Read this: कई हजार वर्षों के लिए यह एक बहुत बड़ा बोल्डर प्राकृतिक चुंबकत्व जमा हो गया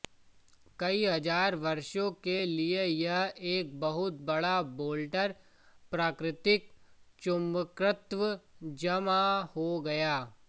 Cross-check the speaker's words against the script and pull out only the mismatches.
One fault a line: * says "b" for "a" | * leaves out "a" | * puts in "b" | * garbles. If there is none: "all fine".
all fine